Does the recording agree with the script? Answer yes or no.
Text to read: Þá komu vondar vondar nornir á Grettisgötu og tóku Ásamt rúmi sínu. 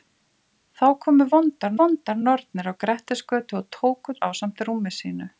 yes